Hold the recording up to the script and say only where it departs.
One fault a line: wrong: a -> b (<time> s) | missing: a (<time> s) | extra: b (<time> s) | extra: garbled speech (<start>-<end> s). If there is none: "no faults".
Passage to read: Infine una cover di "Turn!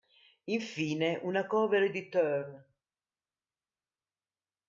no faults